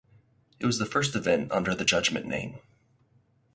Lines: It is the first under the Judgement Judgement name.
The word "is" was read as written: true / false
false